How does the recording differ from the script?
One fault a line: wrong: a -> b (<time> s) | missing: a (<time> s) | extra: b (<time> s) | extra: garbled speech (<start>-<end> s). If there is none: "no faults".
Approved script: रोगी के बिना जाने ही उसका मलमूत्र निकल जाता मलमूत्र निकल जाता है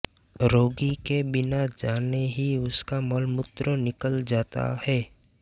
missing: मलमूत्र निकल जाता (4.7 s)